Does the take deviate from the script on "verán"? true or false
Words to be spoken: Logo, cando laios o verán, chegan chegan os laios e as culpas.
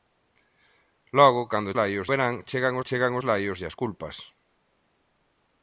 false